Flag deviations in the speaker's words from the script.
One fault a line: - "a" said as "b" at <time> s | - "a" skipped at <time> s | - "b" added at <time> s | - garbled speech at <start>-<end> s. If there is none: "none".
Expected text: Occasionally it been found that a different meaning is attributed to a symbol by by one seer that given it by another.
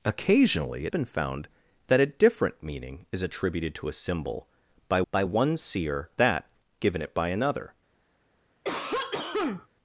none